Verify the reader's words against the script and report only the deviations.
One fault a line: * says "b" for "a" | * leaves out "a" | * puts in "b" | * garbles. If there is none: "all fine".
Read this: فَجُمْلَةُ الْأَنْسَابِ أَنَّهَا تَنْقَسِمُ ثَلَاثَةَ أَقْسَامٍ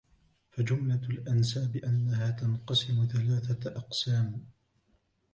all fine